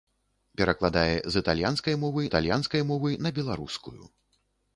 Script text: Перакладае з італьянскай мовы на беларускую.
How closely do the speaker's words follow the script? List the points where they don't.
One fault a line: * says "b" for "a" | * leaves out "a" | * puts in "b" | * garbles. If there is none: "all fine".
* puts in "італьянскай мовы"